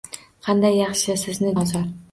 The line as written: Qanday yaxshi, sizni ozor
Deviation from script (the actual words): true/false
false